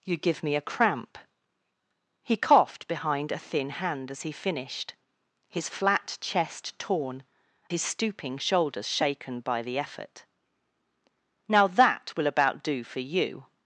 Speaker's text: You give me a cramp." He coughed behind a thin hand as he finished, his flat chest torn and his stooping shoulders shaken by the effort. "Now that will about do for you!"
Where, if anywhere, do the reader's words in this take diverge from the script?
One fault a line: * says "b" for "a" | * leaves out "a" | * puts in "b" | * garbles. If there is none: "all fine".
* leaves out "and"